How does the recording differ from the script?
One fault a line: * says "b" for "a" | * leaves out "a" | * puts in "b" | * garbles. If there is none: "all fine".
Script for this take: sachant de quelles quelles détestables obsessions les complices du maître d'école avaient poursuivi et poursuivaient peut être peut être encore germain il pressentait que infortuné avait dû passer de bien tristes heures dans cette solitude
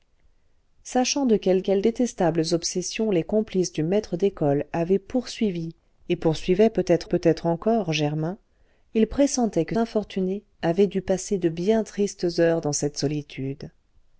all fine